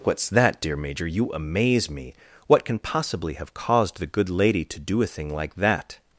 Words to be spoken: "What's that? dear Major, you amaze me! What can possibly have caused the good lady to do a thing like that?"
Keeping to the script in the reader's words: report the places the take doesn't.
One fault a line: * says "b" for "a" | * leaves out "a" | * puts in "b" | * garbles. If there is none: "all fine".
all fine